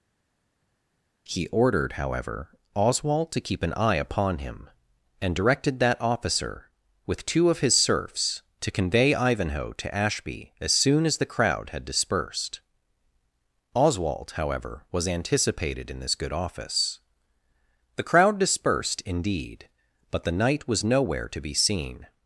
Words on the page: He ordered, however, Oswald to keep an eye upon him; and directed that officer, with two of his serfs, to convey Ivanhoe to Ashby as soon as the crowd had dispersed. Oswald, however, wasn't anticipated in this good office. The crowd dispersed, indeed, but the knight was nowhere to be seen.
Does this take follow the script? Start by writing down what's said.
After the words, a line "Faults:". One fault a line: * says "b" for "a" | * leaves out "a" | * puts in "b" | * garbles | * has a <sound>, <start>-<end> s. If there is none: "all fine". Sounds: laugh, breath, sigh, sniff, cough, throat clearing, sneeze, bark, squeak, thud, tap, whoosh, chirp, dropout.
He ordered, however, Oswald to keep an eye upon him; and directed that officer, with two of his serfs, to convey Ivanhoe to Ashby as soon as the crowd had dispersed. Oswald, however, was anticipated in this good office. The crowd dispersed, indeed, but the knight was nowhere to be seen.
Faults:
* says "was" for "wasn't"